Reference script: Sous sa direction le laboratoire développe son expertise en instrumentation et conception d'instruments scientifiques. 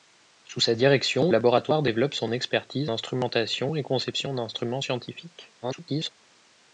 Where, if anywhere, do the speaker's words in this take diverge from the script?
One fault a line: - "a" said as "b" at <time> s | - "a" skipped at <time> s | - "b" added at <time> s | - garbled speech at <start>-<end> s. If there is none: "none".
- "le" skipped at 1.3 s
- "en" skipped at 2.9 s
- garbled speech at 5.6-6.1 s